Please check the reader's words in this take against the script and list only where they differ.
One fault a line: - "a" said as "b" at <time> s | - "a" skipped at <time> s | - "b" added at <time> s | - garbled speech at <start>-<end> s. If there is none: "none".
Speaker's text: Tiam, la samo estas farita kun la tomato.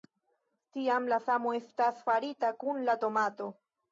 none